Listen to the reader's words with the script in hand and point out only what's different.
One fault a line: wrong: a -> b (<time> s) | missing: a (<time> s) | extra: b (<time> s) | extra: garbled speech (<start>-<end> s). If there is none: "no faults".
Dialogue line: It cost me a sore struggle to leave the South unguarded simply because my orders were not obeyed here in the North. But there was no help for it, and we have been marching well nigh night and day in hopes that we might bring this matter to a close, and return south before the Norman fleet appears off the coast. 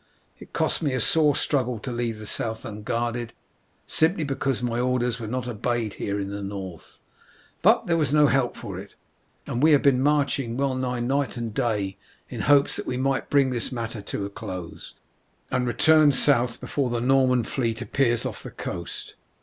no faults